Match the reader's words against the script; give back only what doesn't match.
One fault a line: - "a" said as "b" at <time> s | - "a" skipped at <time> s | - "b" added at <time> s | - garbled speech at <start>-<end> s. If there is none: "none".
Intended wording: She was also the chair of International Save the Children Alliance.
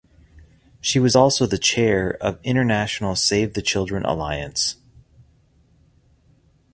none